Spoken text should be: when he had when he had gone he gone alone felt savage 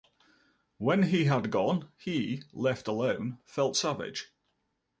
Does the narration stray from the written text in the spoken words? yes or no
yes